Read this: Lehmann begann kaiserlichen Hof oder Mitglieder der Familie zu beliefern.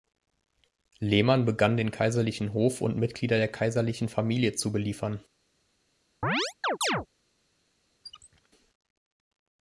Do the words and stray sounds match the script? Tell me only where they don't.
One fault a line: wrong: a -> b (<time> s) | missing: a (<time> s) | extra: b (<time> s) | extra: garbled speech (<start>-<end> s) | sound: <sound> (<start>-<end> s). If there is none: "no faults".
extra: den (1.8 s)
wrong: oder -> und (2.8 s)
extra: kaiserlichen (3.5 s)
sound: chirp (6.2-7.1 s)
sound: squeak (8.0-8.5 s)